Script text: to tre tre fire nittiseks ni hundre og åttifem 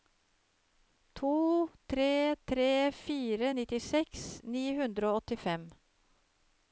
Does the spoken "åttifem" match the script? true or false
true